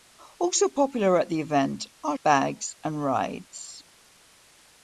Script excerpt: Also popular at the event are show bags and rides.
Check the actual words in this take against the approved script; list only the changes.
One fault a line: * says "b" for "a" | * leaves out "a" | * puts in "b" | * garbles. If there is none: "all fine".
* leaves out "show"